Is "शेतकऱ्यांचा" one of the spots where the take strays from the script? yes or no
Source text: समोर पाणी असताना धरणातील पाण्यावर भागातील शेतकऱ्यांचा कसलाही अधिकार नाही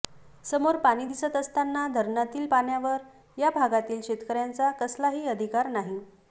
no